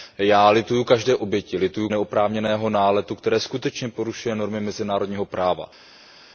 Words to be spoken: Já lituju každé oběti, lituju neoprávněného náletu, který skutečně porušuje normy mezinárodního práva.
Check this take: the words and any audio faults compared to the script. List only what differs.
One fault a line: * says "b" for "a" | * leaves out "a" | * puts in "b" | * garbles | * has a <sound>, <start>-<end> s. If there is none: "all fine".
all fine